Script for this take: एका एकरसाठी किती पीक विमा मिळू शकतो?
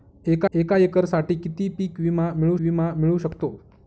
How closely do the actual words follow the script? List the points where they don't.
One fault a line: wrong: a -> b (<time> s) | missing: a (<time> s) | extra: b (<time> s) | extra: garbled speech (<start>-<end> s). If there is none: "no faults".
extra: एका (0.5 s)
extra: विमा मिळू (2.6 s)